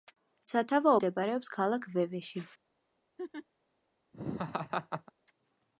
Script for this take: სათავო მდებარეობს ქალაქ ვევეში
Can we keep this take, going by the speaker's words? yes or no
yes